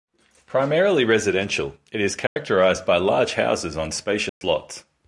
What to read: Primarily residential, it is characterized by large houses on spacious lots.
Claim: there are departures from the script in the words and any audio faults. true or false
true